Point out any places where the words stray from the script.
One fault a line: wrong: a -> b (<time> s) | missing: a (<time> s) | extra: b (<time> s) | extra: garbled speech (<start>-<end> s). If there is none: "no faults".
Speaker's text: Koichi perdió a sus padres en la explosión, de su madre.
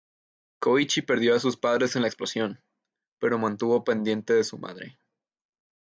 extra: pero mantuvo pendiente (3.2 s)